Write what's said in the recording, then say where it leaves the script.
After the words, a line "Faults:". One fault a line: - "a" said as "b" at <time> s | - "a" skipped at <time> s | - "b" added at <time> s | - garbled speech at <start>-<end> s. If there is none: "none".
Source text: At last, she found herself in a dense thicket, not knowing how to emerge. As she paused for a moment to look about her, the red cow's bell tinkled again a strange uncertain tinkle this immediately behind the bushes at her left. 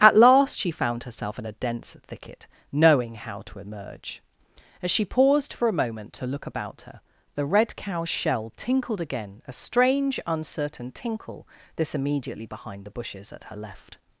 At last, she found herself in a dense thicket, knowing how to emerge. As she paused for a moment to look about her, the red cow's shell tinkled again a strange uncertain tinkle this immediately behind the bushes at her left.
Faults:
- "not" skipped at 2.5 s
- "bell" said as "shell" at 8.1 s